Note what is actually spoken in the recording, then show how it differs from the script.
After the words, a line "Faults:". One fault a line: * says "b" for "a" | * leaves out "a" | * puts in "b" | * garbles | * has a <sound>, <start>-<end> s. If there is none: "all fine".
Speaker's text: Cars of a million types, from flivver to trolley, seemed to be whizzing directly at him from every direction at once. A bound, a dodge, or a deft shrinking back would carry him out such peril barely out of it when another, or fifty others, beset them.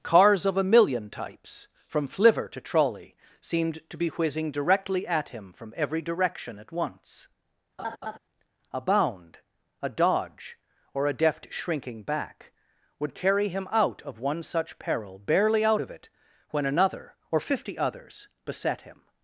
Cars of a million types, from flivver to trolley, seemed to be whizzing directly at him from every direction at once. A bound, a dodge, or a deft shrinking back would carry him out of one such peril barely out of it when another, or fifty others, beset him.
Faults:
* has a laugh, 7.8-8.2 s
* puts in "of one"
* says "him" for "them"